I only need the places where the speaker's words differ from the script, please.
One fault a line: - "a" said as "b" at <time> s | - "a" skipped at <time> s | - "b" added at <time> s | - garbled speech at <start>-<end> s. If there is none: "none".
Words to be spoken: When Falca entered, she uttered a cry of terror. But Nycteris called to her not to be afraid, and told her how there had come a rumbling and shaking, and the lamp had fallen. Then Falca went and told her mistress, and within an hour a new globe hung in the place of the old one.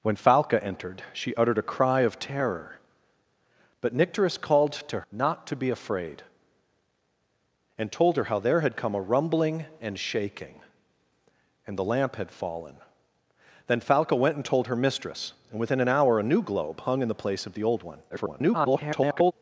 - "her" skipped at 5.0 s
- garbled speech at 18.1-19.3 s